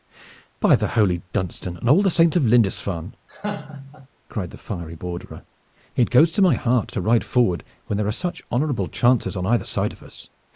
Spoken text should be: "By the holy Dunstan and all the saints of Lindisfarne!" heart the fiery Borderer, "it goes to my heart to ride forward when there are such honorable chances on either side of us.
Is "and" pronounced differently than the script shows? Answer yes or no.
no